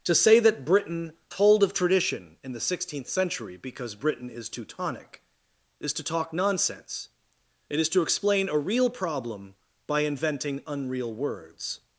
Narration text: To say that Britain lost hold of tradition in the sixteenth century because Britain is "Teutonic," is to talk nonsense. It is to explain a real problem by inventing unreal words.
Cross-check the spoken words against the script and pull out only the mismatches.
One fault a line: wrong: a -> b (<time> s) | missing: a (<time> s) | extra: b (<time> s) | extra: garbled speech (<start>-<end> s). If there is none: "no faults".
missing: lost (1.1 s)